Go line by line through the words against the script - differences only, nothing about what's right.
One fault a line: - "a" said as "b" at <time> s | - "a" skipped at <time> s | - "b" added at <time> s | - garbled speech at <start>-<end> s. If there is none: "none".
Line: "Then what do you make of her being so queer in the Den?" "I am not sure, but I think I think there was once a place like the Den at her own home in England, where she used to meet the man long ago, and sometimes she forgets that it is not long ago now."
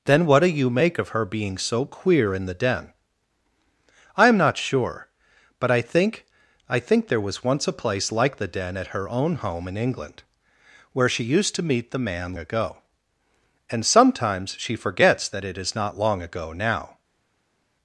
- "long" skipped at 12.3 s